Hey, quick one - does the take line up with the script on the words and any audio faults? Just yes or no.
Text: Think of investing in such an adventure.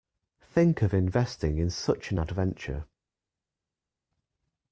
yes